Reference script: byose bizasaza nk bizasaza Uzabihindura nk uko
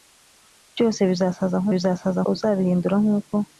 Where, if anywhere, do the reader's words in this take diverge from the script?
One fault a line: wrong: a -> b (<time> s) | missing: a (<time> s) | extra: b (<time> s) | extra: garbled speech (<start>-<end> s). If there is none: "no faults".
no faults